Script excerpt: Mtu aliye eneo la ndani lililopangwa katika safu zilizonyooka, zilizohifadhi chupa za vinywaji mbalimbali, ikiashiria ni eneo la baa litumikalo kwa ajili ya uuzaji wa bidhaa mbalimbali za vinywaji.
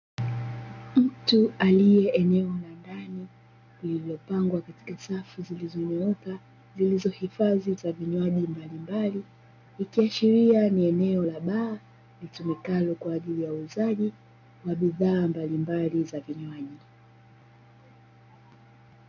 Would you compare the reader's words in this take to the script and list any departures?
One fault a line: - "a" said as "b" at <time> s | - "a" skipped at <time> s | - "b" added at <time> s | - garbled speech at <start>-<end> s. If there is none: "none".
- "chupa" skipped at 7.8 s